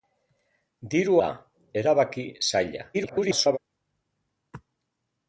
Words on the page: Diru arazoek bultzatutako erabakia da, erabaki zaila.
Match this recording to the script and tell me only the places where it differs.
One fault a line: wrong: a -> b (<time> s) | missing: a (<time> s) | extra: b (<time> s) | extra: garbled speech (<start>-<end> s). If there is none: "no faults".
missing: arazoek bultzatutako erabakia (1.2 s)
extra: garbled speech (2.9-3.6 s)